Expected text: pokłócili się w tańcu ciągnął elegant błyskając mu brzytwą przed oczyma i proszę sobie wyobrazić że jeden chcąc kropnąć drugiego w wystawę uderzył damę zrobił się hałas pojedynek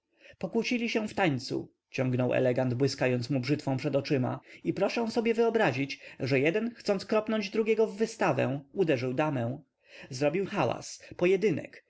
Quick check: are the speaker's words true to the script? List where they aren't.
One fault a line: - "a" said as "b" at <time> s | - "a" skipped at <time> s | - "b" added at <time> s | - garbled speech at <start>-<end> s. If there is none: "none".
- "się" skipped at 10.5 s